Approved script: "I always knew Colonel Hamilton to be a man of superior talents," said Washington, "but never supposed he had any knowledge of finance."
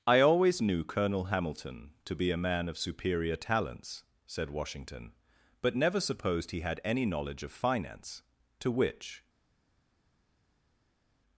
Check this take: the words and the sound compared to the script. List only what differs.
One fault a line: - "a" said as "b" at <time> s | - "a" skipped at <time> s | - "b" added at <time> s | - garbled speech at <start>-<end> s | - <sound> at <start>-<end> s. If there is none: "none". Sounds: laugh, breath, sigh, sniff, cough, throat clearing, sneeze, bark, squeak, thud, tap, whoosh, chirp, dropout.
- "To which" added at 8.6 s